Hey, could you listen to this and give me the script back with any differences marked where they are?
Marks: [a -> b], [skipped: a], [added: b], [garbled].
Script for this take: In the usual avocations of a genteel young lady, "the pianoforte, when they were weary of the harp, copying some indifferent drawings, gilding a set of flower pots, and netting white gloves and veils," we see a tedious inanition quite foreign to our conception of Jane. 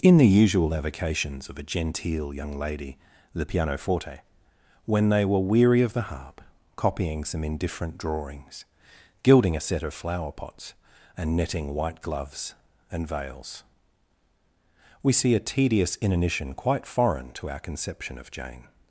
In the usual avocations of a genteel young lady, "the pianoforte, when they were weary of the harp, copying some indifferent drawings, gilding a set of flower pots, and netting white gloves and veils," we see a tedious inanition quite foreign to our conception of Jane.